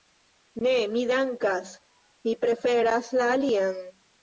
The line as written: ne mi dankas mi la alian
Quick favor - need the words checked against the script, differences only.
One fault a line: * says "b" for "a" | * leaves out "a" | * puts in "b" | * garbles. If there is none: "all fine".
* puts in "preferas"